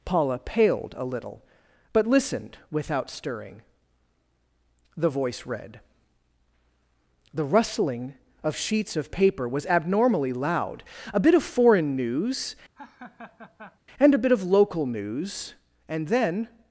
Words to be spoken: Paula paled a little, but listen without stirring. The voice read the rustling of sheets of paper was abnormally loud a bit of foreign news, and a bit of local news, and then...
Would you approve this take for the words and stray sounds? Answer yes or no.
no